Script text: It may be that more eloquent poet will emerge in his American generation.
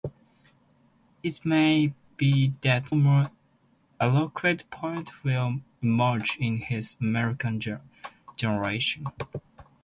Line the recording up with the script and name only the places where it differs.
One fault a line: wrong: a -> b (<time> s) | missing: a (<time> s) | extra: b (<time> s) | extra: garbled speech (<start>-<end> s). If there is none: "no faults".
no faults